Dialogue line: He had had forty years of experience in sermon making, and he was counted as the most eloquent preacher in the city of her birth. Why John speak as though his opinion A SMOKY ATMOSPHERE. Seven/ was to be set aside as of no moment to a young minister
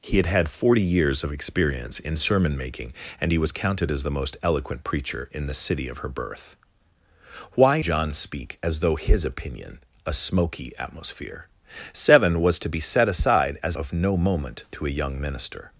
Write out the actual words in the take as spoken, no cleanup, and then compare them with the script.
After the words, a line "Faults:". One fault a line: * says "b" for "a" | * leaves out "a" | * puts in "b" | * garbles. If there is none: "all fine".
He had had forty years of experience in sermon making, and he was counted as the most eloquent preacher in the city of her birth. Why John speak as though his opinion A SMOKY ATMOSPHERE. Seven/ was to be set aside as of no moment to a young minister
Faults:
all fine